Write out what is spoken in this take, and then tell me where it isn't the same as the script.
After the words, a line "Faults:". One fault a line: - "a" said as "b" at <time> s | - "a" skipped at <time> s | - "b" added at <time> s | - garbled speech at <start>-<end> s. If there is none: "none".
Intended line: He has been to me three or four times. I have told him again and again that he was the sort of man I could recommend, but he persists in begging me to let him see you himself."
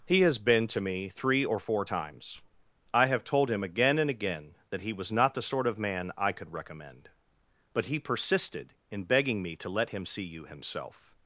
He has been to me three or four times. I have told him again and again that he was not the sort of man I could recommend, but he persisted in begging me to let him see you himself."
Faults:
- "not" added at 5.1 s
- "persists" said as "persisted" at 8.0 s